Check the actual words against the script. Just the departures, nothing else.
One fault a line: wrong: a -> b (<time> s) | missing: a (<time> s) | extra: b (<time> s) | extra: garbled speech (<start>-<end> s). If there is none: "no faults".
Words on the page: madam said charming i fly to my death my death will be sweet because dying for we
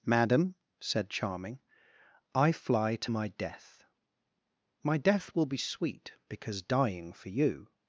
wrong: we -> you (7.3 s)